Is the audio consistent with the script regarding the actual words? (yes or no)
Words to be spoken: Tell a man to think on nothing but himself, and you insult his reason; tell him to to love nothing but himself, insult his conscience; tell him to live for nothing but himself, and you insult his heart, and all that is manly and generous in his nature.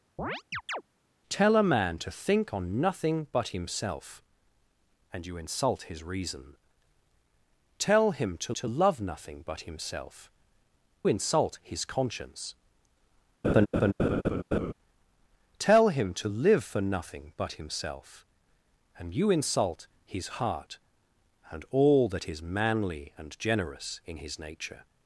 yes